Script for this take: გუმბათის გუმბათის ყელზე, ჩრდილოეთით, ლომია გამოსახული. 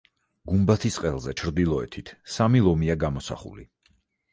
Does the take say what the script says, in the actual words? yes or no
no